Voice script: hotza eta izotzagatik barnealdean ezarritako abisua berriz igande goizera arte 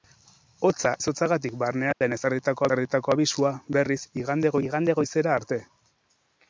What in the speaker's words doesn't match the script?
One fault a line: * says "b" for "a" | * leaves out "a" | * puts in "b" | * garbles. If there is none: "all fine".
* leaves out "eta"
* puts in "ezarritako"
* puts in "igande"